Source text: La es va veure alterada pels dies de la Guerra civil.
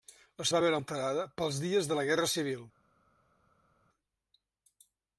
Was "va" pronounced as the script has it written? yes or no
yes